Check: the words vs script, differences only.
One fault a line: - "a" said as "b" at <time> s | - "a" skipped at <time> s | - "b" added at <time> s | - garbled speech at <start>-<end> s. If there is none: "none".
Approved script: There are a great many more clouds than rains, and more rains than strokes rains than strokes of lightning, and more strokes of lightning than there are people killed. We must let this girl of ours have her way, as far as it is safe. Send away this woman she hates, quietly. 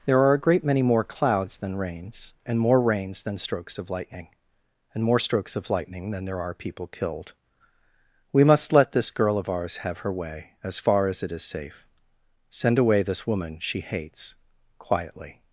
- "rains than strokes" skipped at 3.8 s